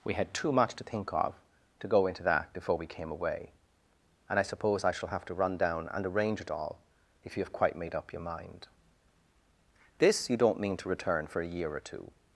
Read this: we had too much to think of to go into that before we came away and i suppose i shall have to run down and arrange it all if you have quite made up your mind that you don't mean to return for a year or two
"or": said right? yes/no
yes